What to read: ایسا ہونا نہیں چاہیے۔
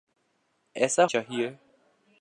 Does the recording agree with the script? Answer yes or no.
no